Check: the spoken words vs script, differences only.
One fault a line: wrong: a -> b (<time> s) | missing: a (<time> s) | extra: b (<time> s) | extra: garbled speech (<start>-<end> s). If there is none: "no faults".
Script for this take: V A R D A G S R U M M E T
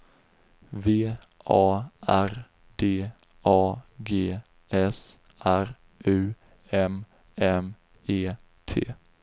no faults